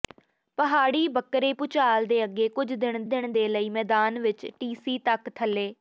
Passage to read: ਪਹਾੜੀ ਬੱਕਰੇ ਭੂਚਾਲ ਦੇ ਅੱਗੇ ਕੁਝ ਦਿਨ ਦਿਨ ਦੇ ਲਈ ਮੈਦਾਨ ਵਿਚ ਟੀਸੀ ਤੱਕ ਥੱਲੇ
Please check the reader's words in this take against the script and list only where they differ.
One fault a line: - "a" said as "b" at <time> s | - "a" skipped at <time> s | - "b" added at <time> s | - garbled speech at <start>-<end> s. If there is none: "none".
none